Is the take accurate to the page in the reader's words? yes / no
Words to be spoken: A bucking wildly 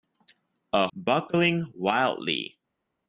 yes